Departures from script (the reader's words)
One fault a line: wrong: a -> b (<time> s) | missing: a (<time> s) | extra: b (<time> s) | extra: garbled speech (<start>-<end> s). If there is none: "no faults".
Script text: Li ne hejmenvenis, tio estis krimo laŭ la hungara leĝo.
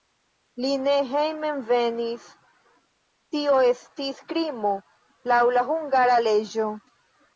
no faults